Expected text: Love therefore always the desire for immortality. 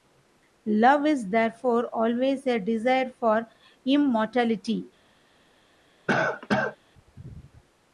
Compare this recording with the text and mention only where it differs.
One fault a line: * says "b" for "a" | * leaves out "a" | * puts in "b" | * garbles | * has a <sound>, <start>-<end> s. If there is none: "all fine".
* puts in "is"
* says "a" for "the"
* has a cough, 6.1-6.8 s